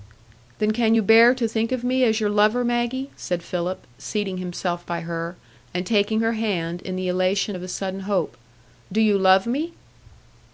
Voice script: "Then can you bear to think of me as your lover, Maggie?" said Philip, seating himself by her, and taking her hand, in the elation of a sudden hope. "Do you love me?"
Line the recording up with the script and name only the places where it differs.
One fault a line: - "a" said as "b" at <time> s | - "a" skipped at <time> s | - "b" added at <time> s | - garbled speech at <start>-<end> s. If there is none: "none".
none